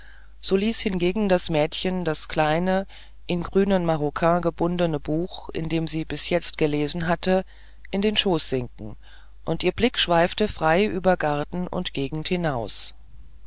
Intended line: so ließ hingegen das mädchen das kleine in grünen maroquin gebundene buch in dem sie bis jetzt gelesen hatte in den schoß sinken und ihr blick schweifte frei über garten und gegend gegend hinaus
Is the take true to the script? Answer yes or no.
no